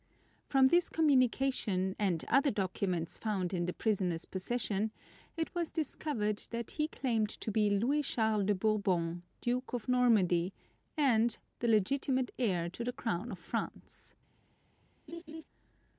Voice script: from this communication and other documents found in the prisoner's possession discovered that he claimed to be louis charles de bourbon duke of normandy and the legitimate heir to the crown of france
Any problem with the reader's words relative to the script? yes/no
yes